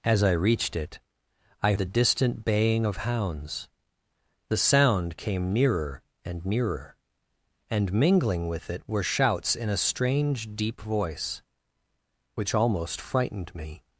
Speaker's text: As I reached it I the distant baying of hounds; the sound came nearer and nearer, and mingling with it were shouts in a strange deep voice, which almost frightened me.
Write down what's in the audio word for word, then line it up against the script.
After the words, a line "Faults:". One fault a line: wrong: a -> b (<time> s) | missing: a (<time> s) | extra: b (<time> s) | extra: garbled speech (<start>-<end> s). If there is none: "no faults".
As I reached it I the distant baying of hounds; the sound came nearer and nearer, and mingling with it were shouts in a strange deep voice, which almost frightened me.
Faults:
no faults